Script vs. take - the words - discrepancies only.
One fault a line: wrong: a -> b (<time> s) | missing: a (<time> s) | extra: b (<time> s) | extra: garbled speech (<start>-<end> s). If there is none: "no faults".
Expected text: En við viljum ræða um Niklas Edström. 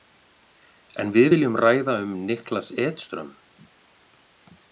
no faults